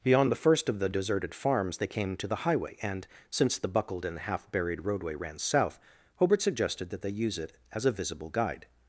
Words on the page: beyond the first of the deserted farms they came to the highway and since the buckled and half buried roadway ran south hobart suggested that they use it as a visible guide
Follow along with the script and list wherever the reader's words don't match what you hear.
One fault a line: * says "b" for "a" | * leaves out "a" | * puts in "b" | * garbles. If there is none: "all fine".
all fine